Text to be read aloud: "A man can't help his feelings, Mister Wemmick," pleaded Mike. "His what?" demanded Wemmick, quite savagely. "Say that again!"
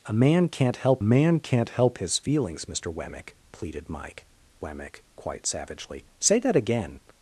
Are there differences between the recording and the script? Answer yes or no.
yes